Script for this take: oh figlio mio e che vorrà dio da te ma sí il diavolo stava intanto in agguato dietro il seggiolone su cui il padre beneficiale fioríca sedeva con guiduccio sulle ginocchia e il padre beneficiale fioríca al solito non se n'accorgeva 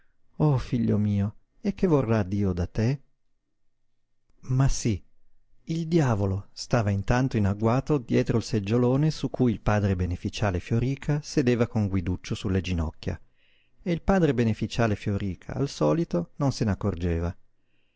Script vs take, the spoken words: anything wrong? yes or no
no